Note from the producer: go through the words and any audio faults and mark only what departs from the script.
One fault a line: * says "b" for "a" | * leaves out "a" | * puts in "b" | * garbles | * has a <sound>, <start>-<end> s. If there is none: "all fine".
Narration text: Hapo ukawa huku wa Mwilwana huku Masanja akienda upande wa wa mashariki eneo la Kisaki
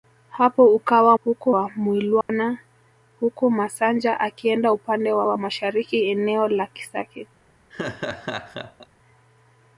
* has a dropout, 2.2-2.3 s
* has a laugh, 7.7-8.9 s